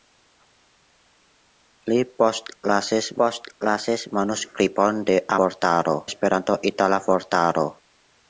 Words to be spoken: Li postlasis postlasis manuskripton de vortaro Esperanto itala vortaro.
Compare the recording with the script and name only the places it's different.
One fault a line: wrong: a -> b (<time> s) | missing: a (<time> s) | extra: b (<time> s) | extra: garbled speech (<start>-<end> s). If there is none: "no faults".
no faults